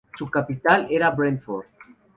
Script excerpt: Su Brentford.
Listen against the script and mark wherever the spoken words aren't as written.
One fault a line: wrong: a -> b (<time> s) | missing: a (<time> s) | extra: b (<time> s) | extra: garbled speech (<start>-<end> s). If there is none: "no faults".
extra: capital era (0.3 s)